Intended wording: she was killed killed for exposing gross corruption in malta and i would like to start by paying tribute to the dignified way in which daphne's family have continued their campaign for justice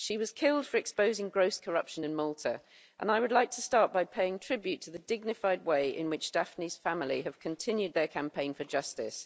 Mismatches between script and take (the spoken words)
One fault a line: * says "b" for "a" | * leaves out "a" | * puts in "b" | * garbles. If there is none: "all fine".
* leaves out "killed"